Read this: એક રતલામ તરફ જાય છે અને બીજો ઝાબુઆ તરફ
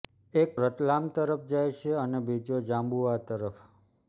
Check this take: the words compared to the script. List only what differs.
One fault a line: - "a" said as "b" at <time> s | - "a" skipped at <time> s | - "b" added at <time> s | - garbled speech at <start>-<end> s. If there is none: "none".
none